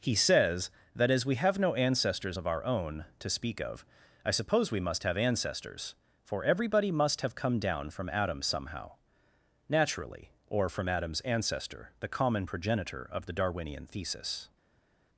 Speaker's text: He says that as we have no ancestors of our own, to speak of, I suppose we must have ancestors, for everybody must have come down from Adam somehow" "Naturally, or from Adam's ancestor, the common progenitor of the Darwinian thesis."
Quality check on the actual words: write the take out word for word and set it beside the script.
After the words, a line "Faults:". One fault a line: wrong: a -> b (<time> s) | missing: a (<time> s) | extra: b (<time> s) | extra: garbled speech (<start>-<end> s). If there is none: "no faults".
He says that as we have no ancestors of our own, to speak of, I suppose we must have ancestors, for everybody must have come down from Adam somehow" "Naturally, or from Adam's ancestor, the common progenitor of the Darwinian thesis."
Faults:
no faults